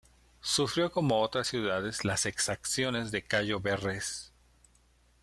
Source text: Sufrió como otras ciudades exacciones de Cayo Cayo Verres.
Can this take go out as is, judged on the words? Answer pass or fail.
fail